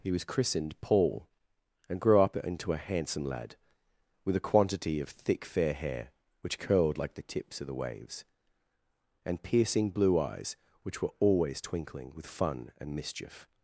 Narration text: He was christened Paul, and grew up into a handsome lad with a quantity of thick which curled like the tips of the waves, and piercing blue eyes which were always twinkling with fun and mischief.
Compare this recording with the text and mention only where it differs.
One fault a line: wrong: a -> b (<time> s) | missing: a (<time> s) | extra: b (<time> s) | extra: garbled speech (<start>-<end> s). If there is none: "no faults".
extra: fair hair (5.4 s)